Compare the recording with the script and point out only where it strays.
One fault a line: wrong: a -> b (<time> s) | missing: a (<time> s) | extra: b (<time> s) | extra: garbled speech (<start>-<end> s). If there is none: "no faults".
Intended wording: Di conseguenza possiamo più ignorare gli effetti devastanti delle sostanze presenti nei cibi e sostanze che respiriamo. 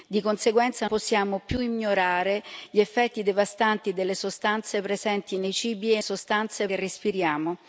no faults